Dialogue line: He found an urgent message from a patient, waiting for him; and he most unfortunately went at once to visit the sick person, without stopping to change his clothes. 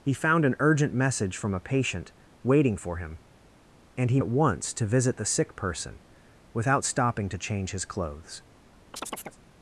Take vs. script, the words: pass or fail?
fail